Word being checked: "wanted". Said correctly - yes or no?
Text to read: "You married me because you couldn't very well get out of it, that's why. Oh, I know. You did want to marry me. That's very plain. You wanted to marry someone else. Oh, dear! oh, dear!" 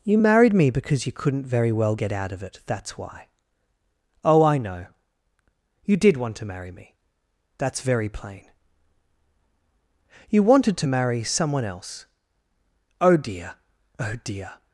yes